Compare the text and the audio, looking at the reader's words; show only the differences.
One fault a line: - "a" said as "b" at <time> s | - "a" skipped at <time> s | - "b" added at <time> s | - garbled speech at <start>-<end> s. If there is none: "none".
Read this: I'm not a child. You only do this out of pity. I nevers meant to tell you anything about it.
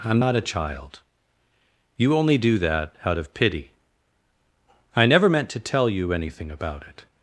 - "this" said as "that" at 2.6 s
- "nevers" said as "never" at 5.1 s